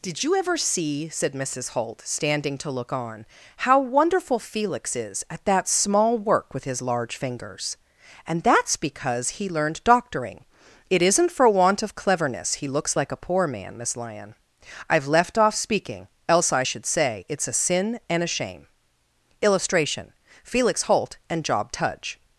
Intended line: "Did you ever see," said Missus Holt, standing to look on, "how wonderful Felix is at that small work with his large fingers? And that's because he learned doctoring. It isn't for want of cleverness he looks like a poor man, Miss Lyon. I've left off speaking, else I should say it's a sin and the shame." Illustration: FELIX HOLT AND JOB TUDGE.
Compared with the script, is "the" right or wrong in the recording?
wrong